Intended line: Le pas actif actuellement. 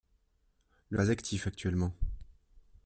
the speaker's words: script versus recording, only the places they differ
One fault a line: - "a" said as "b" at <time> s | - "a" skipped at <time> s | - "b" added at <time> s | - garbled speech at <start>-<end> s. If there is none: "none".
none